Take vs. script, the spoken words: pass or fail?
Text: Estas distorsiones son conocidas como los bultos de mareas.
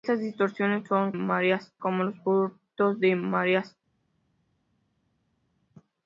fail